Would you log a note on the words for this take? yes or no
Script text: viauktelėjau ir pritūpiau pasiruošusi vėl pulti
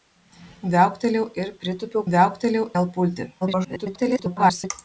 yes